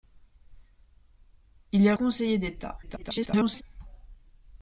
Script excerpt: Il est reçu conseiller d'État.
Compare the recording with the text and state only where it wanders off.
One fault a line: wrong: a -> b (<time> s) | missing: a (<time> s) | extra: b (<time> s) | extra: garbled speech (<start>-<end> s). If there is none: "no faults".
missing: reçu (1.9 s)
extra: garbled speech (2.8-3.6 s)